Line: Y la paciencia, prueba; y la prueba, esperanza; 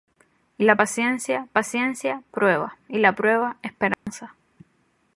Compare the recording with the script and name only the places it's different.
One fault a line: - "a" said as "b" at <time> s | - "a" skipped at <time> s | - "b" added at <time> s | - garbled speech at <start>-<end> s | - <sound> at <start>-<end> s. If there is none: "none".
- "paciencia" added at 1.5 s
- dropout at 3.9-4.1 s